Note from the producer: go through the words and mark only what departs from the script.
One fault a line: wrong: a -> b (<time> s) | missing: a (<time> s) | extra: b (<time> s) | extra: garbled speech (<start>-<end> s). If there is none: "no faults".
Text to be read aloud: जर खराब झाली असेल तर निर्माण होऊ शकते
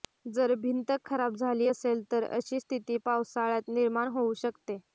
extra: भिंत (0.6 s)
extra: अशी स्थिती पावसाळ्यात (2.3 s)